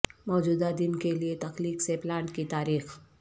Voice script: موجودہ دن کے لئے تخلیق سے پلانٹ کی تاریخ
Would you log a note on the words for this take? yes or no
no